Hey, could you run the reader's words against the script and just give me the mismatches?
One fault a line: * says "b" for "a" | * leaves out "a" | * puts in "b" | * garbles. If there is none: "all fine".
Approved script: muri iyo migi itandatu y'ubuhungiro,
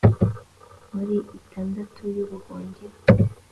* leaves out "iyo migi"